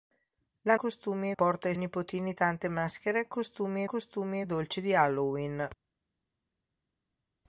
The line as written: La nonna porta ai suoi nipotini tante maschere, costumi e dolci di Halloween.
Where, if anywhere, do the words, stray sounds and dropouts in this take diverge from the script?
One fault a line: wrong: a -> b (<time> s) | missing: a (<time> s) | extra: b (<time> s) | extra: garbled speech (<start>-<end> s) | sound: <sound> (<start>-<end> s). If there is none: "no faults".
wrong: nonna -> costumi (0.7 s)
missing: suoi (1.7 s)
extra: costumi (3.8 s)